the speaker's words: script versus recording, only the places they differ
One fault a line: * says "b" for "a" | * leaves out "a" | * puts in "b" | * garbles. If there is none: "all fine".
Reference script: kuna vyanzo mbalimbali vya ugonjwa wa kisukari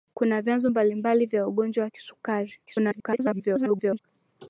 * garbles